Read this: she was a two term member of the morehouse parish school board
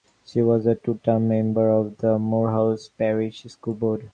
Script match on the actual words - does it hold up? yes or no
yes